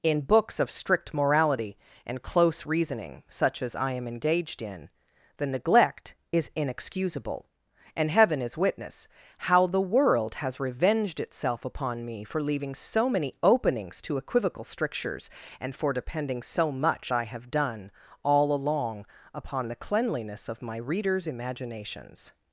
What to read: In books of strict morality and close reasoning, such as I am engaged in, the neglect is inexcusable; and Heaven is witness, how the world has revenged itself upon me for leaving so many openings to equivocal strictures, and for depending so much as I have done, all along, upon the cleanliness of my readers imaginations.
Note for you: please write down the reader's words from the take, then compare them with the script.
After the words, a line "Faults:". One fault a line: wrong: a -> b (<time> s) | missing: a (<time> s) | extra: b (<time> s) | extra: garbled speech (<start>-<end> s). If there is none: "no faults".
In books of strict morality and close reasoning, such as I am engaged in, the neglect is inexcusable; and Heaven is witness, how the world has revenged itself upon me for leaving so many openings to equivocal strictures, and for depending so much I have done, all along, upon the cleanliness of my readers imaginations.
Faults:
missing: as (17.1 s)